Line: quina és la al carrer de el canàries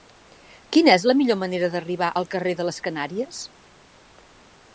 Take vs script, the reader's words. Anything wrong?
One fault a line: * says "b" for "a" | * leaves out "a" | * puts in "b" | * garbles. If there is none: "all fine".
* puts in "millor manera d'arribar"
* says "les" for "el"